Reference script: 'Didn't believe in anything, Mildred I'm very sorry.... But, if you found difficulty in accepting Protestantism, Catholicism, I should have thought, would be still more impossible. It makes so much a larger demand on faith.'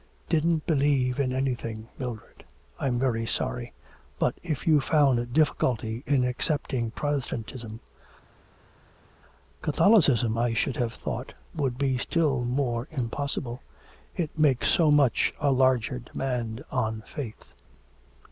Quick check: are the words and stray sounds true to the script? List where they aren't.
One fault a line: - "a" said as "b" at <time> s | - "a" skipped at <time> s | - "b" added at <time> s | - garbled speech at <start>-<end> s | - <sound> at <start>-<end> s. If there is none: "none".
none